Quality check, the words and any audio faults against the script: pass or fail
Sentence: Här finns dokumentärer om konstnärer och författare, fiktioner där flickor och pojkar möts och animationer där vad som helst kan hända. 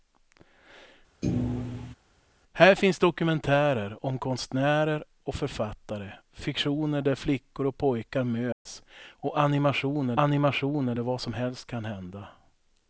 fail